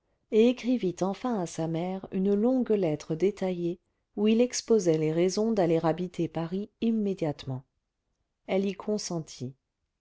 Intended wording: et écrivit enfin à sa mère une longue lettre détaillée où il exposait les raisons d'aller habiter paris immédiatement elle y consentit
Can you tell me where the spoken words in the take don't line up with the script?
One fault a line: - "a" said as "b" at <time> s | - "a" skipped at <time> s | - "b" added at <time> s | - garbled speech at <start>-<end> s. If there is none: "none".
none